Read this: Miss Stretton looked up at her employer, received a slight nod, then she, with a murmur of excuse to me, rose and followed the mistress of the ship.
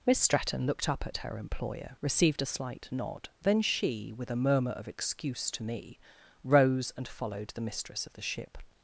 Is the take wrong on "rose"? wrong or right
right